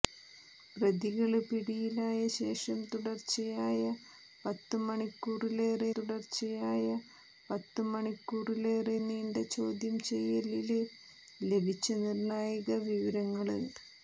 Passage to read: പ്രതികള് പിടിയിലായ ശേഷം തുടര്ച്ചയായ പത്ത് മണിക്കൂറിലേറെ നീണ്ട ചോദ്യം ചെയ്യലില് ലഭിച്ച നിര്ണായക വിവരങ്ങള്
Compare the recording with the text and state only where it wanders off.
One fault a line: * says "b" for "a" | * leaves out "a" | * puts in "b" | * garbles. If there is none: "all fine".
* puts in "തുടര്ച്ചയായ പത്ത് മണിക്കൂറിലേറെ"